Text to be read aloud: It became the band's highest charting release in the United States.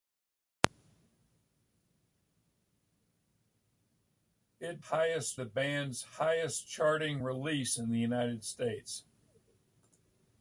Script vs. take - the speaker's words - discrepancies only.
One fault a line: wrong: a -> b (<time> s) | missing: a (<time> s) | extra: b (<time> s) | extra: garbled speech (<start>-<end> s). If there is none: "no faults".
wrong: became -> highest (4.9 s)